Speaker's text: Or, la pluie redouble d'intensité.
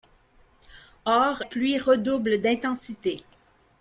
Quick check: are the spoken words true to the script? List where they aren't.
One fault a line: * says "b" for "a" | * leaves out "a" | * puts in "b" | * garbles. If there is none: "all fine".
* leaves out "la"